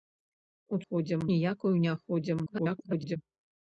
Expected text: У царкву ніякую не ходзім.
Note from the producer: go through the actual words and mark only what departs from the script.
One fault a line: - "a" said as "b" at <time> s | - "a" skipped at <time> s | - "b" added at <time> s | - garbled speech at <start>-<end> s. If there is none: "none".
- "царкву" said as "ходзім" at 0.8 s
- garbled speech at 2.5-3.2 s